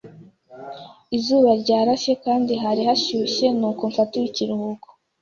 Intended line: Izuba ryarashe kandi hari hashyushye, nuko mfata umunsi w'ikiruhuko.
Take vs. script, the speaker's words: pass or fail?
fail